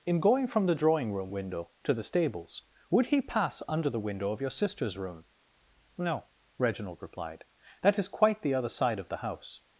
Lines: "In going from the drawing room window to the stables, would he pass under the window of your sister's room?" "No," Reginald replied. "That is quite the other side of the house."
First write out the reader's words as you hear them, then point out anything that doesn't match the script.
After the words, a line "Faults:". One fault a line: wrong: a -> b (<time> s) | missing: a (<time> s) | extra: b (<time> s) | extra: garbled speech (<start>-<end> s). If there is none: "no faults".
"In going from the drawing room window to the stables, would he pass under the window of your sister's room?" "No," Reginald replied. "That is quite the other side of the house."
Faults:
no faults